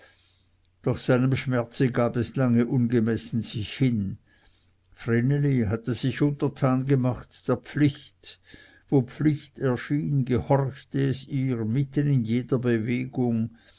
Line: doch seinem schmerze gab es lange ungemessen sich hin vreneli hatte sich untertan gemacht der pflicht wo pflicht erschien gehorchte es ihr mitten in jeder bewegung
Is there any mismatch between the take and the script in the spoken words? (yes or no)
no